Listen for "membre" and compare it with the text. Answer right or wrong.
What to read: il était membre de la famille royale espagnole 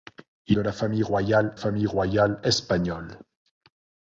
wrong